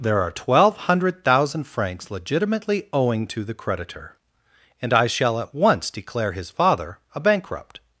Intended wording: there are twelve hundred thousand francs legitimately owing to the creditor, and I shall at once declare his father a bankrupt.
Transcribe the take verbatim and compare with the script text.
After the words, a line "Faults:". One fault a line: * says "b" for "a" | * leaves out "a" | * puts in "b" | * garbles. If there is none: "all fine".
there are twelve hundred thousand francs legitimately owing to the creditor, and I shall at once declare his father a bankrupt.
Faults:
all fine